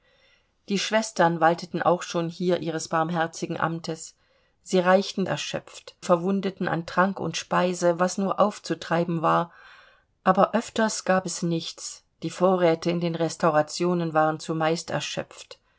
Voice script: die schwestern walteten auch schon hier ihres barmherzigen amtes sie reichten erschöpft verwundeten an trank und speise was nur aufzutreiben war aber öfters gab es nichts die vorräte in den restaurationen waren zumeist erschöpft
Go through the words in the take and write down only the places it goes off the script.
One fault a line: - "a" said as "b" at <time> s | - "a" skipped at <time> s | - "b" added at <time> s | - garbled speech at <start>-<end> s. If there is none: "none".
none